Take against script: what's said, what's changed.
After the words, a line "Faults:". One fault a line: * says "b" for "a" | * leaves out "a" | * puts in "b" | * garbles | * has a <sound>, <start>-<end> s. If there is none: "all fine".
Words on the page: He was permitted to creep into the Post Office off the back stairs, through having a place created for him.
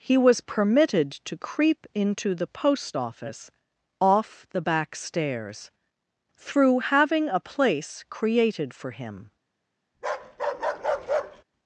He was permitted to creep into the Post Office off the back stairs, through having a place created for him.
Faults:
* has a bark, 9.9-11.4 s